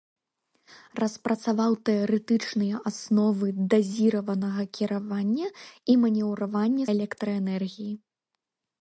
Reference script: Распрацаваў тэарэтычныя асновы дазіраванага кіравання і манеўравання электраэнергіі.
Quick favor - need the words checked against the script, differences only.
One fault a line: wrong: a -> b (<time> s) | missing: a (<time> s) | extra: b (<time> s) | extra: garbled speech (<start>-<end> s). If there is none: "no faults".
no faults